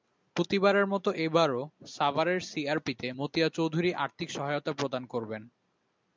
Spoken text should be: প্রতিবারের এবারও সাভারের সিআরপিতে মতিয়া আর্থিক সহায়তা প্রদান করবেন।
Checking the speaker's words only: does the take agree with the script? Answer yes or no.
no